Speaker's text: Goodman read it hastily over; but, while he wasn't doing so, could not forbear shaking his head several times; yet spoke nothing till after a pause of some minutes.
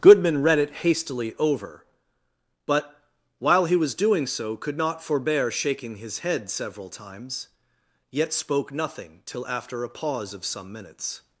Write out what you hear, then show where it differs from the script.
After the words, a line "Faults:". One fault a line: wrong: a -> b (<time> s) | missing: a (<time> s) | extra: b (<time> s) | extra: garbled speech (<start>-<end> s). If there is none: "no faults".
Goodman read it hastily over; but, while he was doing so, could not forbear shaking his head several times; yet spoke nothing till after a pause of some minutes.
Faults:
wrong: wasn't -> was (3.8 s)